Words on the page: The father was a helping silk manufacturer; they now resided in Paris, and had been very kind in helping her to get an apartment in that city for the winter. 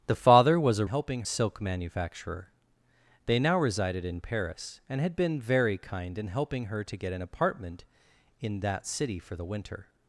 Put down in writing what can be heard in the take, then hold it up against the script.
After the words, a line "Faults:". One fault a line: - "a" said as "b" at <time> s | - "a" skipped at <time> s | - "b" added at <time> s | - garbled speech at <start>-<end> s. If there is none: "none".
The father was a helping silk manufacturer; they now resided in Paris, and had been very kind in helping her to get an apartment in that city for the winter.
Faults:
none